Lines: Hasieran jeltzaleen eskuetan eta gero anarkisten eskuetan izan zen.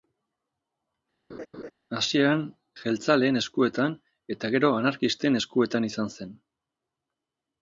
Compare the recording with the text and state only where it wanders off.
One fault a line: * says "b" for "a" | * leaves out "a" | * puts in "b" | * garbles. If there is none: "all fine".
all fine